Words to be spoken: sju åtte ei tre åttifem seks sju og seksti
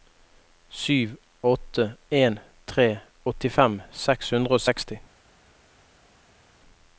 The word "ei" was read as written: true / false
false